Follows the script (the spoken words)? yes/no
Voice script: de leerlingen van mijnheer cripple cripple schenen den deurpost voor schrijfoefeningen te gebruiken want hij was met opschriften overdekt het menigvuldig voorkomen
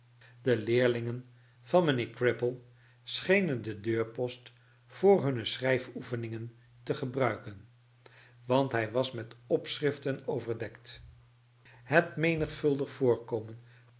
no